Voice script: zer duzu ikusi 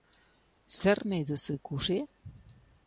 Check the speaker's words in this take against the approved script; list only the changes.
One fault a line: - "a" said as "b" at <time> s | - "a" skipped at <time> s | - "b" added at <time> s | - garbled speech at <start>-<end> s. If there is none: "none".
- "nahi" added at 1.1 s